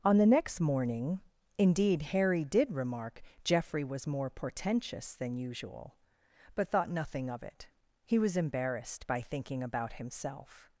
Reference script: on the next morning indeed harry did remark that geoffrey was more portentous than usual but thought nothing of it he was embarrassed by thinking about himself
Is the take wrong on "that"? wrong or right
wrong